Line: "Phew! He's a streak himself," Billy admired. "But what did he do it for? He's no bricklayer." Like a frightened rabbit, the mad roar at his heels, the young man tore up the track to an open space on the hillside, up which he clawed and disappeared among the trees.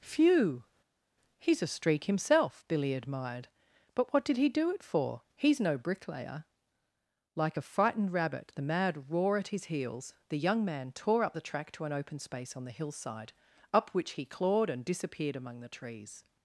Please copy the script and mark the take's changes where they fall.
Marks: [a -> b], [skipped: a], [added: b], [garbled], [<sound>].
"Phew! He's a streak himself," Billy admired. "But what did he do it for? He's no bricklayer." Like a frightened rabbit, the mad roar at his heels, the young man tore up the track to an open space on the hillside, up which he clawed and disappeared among the trees.